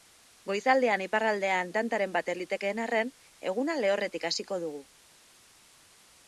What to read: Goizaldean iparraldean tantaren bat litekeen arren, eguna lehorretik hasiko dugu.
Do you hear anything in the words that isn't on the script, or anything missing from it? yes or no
no